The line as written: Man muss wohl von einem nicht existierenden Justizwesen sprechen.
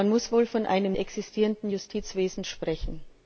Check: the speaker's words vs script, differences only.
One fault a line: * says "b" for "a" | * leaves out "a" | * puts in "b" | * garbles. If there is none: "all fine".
* leaves out "nicht"